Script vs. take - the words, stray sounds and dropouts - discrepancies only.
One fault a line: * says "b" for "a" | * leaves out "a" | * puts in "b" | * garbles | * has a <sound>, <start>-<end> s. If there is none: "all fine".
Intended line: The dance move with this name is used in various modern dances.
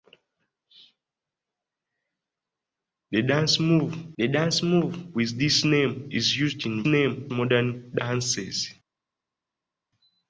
* puts in "the dance move"
* says "name" for "various"